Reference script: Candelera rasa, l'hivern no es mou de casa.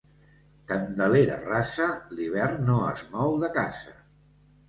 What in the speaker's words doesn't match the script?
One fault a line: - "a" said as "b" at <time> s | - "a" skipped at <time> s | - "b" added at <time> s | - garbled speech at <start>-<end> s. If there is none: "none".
none